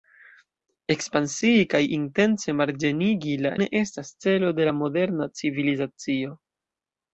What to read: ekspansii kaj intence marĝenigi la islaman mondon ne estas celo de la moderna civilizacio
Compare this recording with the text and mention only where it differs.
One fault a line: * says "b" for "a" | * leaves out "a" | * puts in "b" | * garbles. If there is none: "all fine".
* leaves out "islaman mondon"